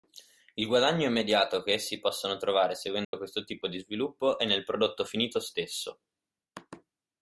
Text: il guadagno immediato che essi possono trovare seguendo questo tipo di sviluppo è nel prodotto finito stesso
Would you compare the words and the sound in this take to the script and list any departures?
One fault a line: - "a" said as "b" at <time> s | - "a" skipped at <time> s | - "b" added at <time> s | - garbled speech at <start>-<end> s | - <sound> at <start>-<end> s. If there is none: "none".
- dropout at 3.0-3.1 s